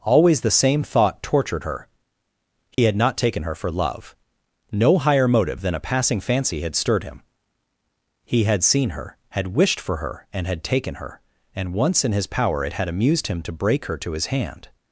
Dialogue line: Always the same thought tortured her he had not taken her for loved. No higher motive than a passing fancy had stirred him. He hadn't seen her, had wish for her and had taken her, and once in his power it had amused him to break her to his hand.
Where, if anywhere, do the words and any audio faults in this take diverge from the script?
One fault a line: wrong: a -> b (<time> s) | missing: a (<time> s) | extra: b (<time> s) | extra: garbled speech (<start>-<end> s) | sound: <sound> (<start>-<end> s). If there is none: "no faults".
sound: dropout (2.7-2.8 s)
wrong: loved -> love (3.7 s)
wrong: hadn't -> had (8.4 s)
wrong: wish -> wished (9.6 s)